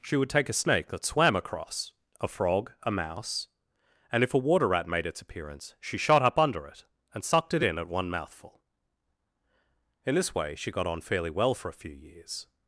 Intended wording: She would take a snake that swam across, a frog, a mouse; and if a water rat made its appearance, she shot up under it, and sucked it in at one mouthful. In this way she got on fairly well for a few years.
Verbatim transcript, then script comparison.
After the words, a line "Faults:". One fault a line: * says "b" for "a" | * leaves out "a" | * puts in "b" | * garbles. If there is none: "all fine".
She would take a snake that swam across, a frog, a mouse; and if a water rat made its appearance, she shot up under it, and sucked it in at one mouthful. In this way she got on fairly well for a few years.
Faults:
all fine